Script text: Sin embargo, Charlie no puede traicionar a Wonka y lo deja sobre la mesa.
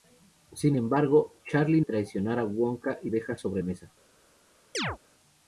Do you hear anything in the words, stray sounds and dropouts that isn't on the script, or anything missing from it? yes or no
yes